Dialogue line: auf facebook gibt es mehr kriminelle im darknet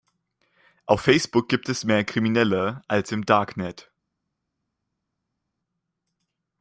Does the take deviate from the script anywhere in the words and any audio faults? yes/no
yes